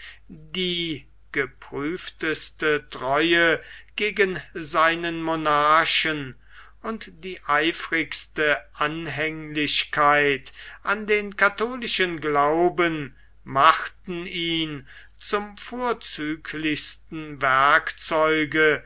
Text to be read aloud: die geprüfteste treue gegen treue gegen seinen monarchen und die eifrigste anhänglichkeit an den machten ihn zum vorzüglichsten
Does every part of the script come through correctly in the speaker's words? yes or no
no